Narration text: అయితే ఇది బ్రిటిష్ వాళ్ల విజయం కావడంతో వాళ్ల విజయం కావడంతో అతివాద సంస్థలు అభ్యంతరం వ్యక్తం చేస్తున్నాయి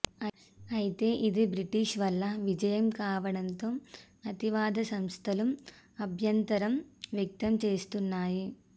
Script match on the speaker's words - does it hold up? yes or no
no